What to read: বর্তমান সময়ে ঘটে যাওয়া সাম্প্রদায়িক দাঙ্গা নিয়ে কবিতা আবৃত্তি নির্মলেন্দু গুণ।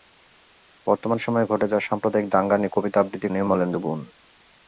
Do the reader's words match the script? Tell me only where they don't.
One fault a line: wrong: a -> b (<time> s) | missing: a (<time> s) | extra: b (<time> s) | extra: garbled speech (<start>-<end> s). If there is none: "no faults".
no faults